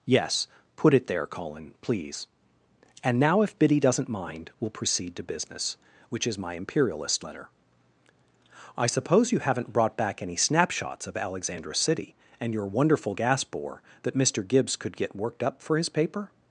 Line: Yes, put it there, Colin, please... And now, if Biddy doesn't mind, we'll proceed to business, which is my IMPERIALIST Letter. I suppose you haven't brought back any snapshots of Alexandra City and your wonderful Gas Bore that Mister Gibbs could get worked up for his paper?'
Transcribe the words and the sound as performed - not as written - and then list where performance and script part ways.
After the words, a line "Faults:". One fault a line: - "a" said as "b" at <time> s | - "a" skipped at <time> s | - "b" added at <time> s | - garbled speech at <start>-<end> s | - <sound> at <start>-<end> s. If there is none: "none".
Yes, put it there, Colin, please... And now, if Biddy doesn't mind, we'll proceed to business, which is my IMPERIALIST Letter. I suppose you haven't brought back any snapshots of Alexandra City and your wonderful Gas Bore that Mister Gibbs could get worked up for his paper?'
Faults:
none